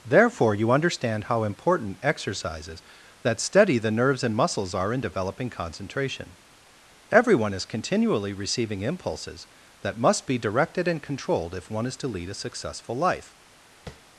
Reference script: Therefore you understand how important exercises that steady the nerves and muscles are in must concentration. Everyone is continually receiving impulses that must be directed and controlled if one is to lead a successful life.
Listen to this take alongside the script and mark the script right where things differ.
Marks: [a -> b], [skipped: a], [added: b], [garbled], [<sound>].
Therefore you understand how important exercises that steady the nerves and muscles are in [must -> developing] concentration. Everyone is continually receiving impulses that must be directed and controlled if one is to lead a successful life. [tap]